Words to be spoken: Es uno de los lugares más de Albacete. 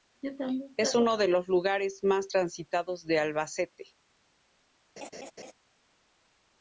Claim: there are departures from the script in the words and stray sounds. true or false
true